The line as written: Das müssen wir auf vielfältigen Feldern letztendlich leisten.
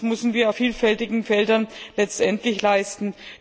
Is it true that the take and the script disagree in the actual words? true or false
false